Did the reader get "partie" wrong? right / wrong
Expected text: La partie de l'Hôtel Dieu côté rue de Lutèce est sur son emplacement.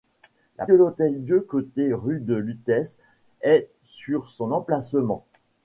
wrong